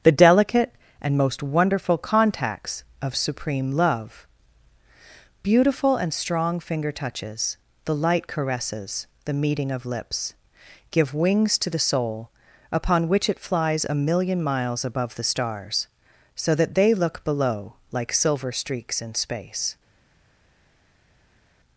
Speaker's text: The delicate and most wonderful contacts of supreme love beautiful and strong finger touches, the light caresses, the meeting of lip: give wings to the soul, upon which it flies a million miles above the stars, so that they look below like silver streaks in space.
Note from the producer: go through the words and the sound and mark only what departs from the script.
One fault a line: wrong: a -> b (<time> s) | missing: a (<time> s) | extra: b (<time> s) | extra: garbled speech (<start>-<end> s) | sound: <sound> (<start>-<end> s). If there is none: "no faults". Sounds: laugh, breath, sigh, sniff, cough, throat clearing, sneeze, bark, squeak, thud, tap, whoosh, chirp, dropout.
wrong: lip -> lips (9.9 s)